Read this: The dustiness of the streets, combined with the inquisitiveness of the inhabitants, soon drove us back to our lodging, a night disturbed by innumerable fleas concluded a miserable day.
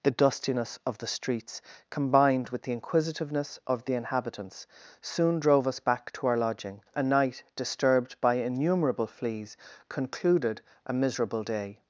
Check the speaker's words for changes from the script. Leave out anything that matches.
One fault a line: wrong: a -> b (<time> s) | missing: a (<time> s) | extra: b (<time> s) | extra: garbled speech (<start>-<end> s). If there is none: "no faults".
no faults